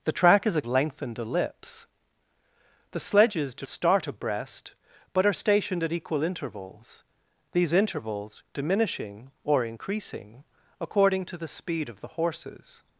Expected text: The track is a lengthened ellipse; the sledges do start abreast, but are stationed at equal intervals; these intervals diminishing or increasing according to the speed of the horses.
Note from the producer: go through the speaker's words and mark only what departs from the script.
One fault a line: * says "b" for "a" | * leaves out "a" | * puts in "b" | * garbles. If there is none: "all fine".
all fine